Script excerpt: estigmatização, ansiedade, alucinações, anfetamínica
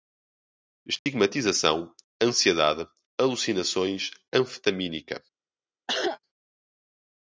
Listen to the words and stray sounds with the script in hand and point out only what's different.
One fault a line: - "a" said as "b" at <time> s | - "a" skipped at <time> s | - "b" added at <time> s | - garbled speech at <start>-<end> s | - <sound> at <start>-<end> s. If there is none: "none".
- dropout at 1.0-1.1 s
- cough at 5.9-6.2 s